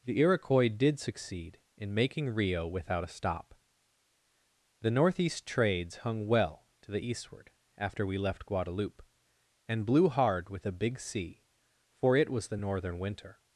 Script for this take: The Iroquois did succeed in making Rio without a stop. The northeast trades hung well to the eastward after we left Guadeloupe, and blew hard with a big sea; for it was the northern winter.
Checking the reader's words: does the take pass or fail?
pass